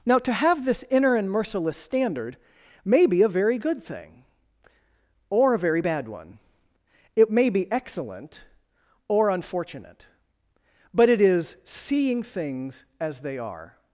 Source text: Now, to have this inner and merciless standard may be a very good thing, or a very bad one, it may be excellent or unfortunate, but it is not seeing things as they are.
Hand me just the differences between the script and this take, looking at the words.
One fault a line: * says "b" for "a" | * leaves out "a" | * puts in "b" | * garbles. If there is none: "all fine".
* leaves out "not"